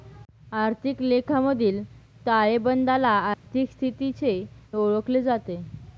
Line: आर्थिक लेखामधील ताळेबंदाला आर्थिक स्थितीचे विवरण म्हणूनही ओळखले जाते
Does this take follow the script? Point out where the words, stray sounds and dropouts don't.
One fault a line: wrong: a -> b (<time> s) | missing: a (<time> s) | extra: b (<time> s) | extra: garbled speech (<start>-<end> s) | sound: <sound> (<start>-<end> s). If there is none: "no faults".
sound: dropout (3.3-3.5 s)
missing: विवरण म्हणूनही (4.3 s)